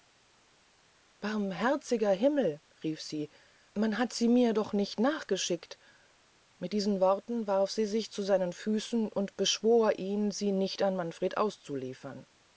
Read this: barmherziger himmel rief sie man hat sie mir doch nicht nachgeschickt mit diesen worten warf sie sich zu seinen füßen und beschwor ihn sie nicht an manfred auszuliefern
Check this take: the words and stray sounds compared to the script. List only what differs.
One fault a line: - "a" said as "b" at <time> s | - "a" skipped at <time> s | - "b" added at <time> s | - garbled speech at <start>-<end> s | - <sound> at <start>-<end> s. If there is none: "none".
none